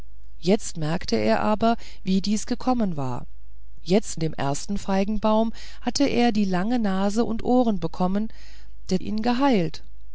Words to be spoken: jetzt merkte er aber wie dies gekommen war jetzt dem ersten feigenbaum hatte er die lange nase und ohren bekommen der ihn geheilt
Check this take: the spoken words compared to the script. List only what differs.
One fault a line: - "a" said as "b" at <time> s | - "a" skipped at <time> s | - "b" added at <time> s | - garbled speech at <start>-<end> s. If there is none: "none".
none